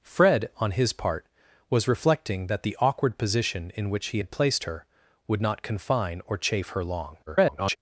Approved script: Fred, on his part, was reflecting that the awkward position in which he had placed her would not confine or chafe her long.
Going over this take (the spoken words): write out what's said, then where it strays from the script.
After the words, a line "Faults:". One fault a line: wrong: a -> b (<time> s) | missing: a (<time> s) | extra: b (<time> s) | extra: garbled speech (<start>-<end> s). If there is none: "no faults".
Fred, on his part, was reflecting that the awkward position in which he had placed her would not confine or chafe her long. [garbled]
Faults:
extra: garbled speech (7.3-7.8 s)